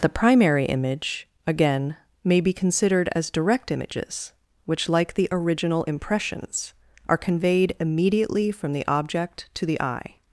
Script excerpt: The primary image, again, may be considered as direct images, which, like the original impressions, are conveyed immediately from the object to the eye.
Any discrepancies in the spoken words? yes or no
no